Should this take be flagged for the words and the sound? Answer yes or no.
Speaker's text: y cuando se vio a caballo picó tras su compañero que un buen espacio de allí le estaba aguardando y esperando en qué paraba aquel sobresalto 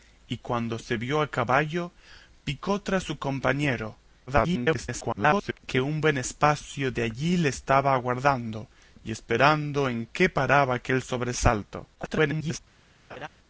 yes